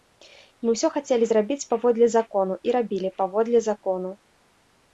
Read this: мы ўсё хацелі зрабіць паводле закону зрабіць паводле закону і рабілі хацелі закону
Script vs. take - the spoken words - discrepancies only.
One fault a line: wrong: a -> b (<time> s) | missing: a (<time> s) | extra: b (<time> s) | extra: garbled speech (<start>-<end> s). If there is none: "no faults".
missing: зрабіць паводле закону (2.5 s)
wrong: хацелі -> паводле (3.2 s)